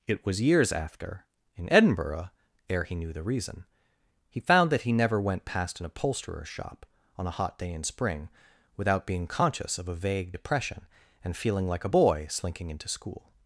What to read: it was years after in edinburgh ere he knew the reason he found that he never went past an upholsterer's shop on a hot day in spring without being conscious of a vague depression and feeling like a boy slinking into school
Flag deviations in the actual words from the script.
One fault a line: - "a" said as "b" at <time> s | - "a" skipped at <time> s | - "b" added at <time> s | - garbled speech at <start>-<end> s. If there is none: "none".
none